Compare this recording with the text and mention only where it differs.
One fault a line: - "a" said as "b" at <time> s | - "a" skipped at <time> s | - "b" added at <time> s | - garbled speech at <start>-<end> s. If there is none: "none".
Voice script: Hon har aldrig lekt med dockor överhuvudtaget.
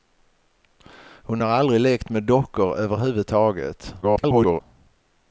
- garbled speech at 4.0-4.6 s